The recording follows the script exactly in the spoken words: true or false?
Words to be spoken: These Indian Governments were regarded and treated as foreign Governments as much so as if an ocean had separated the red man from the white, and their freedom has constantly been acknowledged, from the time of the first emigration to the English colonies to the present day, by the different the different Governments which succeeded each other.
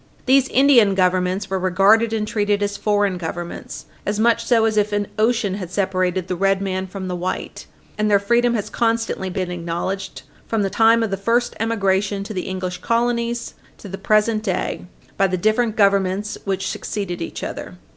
false